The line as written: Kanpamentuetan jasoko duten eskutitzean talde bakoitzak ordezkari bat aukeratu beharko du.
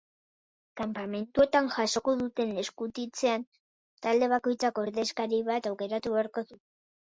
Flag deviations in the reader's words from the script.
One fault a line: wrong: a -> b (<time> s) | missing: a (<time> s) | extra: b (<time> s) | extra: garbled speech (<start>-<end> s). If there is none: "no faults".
no faults